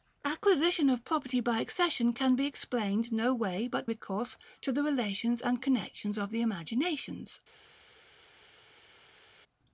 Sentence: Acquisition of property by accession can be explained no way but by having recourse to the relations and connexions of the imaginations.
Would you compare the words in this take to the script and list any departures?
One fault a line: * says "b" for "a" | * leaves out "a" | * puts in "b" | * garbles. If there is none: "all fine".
* leaves out "by having"